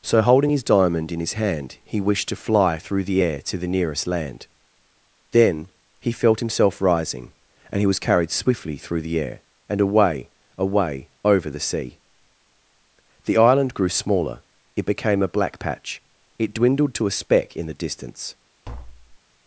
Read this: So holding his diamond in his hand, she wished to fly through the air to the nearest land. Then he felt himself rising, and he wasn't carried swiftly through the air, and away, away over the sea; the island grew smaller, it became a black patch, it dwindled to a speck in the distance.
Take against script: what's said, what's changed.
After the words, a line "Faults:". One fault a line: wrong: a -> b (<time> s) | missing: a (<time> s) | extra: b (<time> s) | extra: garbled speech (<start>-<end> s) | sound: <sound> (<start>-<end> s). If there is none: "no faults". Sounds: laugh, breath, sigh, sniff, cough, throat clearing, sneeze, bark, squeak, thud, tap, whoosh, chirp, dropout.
So holding his diamond in his hand, he wished to fly through the air to the nearest land. Then he felt himself rising, and he was carried swiftly through the air, and away, away over the sea; the island grew smaller, it became a black patch, it dwindled to a speck in the distance.
Faults:
wrong: she -> he (1.8 s)
wrong: wasn't -> was (7.9 s)
sound: tap (18.6-19.2 s)